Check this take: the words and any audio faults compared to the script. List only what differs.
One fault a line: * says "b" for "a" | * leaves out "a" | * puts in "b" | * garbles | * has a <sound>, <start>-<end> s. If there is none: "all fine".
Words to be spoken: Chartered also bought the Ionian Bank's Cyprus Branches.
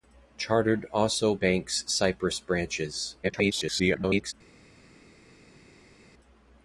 * leaves out "bought the Ionian"
* garbles